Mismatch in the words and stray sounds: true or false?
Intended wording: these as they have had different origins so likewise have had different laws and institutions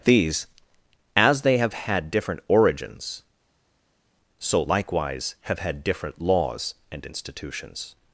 false